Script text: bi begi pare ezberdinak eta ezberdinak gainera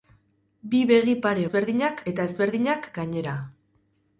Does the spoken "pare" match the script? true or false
true